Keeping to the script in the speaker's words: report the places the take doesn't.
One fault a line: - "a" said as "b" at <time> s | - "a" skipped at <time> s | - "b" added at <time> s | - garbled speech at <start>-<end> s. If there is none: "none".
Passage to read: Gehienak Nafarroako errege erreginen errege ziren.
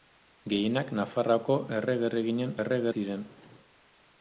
none